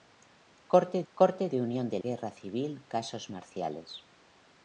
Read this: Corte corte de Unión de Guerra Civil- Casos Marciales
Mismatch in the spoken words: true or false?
false